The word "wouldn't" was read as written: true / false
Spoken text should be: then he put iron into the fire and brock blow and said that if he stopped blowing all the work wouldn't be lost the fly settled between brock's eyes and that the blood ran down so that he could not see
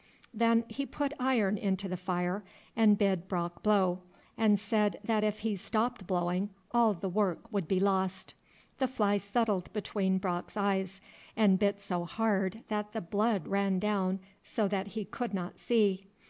false